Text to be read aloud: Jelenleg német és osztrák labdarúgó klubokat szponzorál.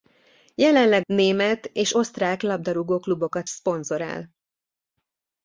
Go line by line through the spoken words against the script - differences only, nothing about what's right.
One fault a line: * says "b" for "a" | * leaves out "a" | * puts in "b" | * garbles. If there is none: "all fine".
all fine